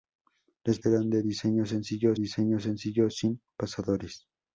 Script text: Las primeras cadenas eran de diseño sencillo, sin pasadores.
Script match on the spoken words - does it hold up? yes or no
no